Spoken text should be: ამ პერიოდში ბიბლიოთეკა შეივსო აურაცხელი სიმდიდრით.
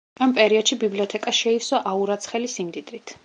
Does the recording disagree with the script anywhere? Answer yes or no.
no